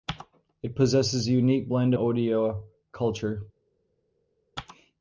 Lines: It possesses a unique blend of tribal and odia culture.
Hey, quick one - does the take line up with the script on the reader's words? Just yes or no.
no